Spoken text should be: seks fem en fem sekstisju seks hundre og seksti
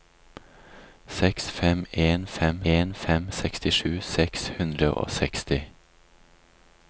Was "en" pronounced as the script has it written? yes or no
yes